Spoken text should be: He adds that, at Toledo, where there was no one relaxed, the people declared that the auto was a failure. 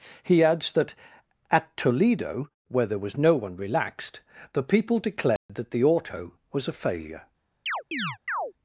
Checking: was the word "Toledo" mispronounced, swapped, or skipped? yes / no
no